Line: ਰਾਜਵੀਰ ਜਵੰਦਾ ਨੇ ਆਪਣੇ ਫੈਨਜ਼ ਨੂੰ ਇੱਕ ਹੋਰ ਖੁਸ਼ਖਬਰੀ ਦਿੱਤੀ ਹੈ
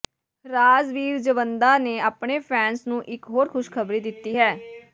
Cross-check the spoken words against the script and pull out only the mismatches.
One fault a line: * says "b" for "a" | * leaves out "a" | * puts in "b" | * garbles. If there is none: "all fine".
all fine